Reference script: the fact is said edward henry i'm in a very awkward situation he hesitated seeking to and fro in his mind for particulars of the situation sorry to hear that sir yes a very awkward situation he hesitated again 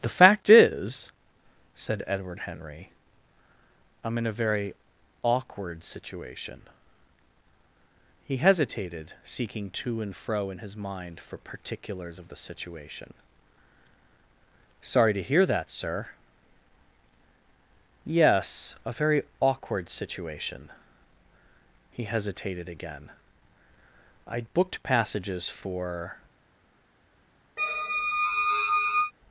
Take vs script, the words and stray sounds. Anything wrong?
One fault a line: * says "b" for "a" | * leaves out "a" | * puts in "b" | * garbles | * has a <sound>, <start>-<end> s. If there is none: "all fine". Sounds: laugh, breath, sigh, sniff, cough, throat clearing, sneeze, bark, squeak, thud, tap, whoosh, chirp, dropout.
* puts in "i'd booked passages for"
* has a squeak, 27.6-29.1 s